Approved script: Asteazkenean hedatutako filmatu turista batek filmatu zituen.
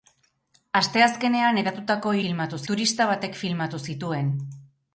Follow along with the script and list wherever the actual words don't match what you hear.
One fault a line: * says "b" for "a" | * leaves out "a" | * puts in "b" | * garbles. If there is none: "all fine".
all fine